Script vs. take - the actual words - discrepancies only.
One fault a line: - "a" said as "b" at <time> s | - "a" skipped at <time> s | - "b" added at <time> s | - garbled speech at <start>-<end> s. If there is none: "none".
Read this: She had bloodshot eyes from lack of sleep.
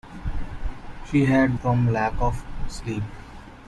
- "bloodshot eyes" skipped at 1.6 s